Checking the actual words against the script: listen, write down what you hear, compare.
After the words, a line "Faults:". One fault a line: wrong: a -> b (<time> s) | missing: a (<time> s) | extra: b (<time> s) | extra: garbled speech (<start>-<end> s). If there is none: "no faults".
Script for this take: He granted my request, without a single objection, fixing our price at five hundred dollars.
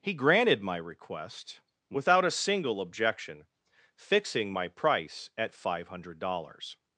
He granted my request, without a single objection, fixing my price at five hundred dollars.
Faults:
wrong: our -> my (4.5 s)